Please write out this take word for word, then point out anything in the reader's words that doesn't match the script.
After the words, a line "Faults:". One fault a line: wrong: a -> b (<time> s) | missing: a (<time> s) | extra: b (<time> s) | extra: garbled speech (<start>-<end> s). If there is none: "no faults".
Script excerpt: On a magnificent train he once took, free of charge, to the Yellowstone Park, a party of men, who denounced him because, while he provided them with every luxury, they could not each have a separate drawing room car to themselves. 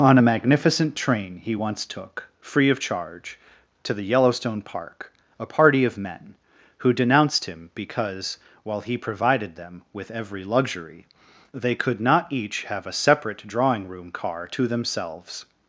On a magnificent train he once took, free of charge, to the Yellowstone Park, a party of men, who denounced him because, while he provided them with every luxury, they could not each have a separate drawing room car to themselves.
Faults:
no faults